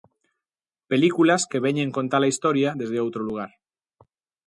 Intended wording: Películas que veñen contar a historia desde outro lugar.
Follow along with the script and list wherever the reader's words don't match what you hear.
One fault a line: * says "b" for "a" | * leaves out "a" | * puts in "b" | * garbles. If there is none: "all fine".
all fine